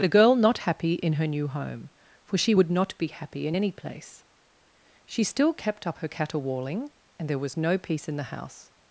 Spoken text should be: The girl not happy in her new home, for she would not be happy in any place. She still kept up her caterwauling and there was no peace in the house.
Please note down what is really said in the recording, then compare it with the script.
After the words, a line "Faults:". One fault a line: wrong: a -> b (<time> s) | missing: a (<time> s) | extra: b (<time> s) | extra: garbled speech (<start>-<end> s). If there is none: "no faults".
The girl not happy in her new home, for she would not be happy in any place. She still kept up her caterwauling and there was no peace in the house.
Faults:
no faults